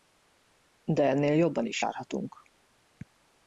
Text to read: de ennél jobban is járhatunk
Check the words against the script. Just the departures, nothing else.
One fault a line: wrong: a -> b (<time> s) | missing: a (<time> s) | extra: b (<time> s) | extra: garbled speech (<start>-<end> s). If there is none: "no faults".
no faults